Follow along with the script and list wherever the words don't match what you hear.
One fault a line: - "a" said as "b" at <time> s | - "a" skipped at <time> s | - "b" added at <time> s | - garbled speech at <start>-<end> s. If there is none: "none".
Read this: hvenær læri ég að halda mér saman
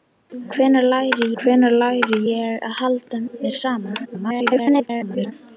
- "hvenær læri" added at 1.4 s
- garbled speech at 4.0-5.3 s